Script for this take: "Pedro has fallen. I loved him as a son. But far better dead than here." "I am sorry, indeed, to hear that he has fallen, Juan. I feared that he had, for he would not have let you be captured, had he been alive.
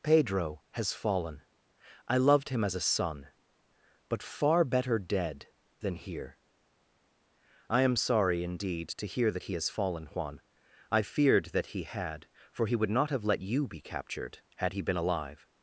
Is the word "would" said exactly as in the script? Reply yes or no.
yes